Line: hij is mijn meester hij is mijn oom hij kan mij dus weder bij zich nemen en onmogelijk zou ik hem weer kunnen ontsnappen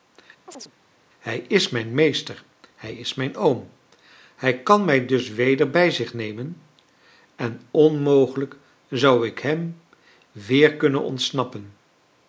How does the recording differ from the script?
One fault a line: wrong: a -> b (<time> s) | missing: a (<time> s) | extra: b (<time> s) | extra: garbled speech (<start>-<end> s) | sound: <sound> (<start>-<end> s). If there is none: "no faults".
sound: chirp (0.5-0.7 s)